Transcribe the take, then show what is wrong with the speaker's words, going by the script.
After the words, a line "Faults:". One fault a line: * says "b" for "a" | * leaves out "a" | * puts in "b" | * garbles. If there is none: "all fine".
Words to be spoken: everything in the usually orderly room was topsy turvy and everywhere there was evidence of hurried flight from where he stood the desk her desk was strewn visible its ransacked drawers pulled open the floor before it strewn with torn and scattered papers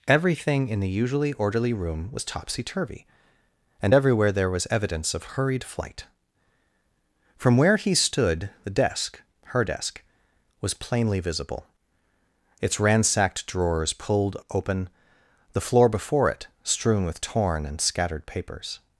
everything in the usually orderly room was topsy turvy and everywhere there was evidence of hurried flight from where he stood the desk her desk was plainly visible its ransacked drawers pulled open the floor before it strewn with torn and scattered papers
Faults:
* says "plainly" for "strewn"